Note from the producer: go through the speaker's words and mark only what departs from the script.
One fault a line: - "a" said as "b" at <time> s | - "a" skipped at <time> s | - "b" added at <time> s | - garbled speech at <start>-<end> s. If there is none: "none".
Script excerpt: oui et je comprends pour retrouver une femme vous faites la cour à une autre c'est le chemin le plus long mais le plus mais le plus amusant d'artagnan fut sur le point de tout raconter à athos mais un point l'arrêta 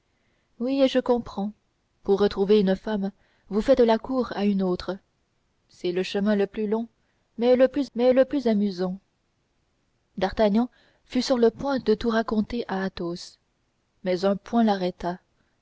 none